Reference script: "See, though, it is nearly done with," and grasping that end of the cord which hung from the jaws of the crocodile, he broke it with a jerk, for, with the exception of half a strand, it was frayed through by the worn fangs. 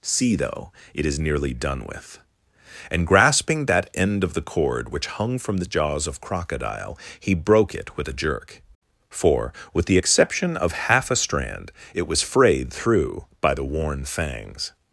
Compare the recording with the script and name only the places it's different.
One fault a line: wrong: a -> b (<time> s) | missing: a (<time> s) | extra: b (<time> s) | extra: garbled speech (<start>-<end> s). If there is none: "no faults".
missing: the (6.2 s)